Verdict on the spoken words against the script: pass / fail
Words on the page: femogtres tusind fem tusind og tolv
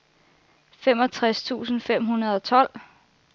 fail